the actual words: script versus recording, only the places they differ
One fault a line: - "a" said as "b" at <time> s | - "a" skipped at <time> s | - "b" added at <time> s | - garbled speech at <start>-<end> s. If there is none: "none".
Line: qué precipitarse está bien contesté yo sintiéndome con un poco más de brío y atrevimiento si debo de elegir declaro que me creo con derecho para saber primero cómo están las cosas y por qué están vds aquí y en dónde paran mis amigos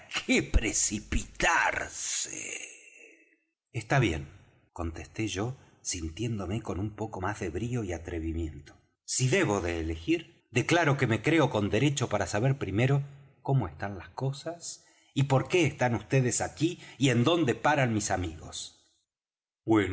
none